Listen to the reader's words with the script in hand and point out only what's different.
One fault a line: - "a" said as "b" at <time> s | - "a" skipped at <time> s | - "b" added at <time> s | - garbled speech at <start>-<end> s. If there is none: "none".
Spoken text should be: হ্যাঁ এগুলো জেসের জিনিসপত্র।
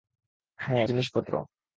- "এগুলো জেসের" skipped at 0.8 s